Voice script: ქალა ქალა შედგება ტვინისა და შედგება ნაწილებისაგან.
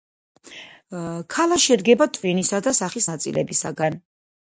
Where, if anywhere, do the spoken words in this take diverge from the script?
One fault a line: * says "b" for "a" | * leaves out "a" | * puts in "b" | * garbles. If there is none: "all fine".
* leaves out "ქალა"
* says "სახის" for "შედგება"